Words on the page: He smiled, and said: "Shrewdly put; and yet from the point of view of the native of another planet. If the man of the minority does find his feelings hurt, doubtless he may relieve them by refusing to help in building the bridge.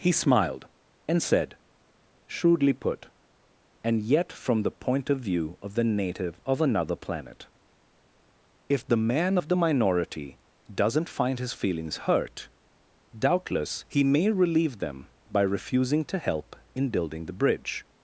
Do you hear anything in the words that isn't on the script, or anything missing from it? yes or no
yes